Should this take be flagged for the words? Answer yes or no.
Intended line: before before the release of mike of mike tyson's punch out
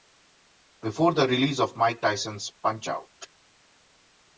yes